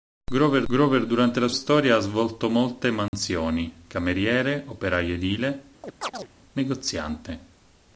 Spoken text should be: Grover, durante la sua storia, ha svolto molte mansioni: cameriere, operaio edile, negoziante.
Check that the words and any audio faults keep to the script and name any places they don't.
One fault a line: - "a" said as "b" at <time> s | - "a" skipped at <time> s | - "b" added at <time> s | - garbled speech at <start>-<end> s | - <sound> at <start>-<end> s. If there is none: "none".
- "grover" added at 0.7 s
- "sua" skipped at 1.5 s
- dropout at 3.1-3.1 s
- chirp at 5.8-6.3 s